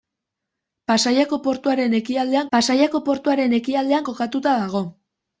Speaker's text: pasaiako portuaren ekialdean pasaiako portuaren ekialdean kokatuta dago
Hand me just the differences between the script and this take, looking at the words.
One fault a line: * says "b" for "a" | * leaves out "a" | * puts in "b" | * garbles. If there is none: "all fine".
all fine